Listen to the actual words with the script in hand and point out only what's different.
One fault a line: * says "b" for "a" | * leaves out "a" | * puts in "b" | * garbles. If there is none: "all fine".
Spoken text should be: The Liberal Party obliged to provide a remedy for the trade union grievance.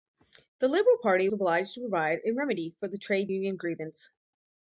all fine